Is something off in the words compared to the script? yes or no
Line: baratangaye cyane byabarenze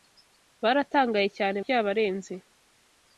no